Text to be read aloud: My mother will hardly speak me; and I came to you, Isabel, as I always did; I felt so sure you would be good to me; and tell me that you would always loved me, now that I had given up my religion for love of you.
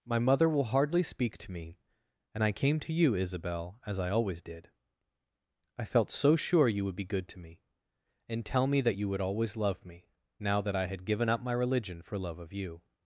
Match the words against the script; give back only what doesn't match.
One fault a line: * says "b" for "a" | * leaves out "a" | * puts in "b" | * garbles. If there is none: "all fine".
* puts in "to"
* says "love" for "loved"